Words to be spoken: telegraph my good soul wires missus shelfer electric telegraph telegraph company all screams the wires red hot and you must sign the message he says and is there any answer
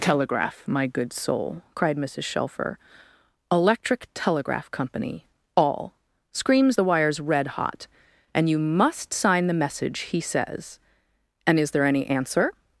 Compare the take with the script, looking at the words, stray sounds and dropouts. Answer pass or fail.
fail